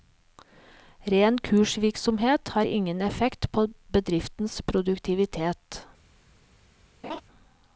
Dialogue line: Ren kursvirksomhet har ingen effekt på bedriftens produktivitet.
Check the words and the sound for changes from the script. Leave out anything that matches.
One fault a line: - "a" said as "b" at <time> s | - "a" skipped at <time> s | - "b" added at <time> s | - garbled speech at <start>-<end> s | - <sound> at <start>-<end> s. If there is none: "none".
- laugh at 7.0-7.2 s